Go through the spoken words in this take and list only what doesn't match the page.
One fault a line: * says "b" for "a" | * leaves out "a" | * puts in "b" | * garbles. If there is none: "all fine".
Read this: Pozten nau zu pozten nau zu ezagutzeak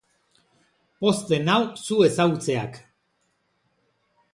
* leaves out "pozten nau zu"